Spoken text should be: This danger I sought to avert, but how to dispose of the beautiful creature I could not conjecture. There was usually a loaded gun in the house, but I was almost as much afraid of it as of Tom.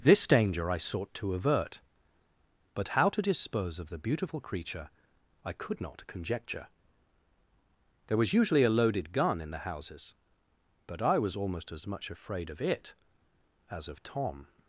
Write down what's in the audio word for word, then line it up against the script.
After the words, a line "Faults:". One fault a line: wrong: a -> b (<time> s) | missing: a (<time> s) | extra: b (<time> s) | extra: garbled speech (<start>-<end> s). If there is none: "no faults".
This danger I sought to avert, but how to dispose of the beautiful creature I could not conjecture. There was usually a loaded gun in the houses, but I was almost as much afraid of it as of Tom.
Faults:
wrong: house -> houses (9.6 s)